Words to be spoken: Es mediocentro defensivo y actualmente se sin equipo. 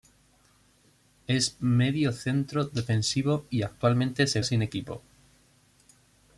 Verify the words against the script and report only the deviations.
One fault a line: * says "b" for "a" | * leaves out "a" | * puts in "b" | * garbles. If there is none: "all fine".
all fine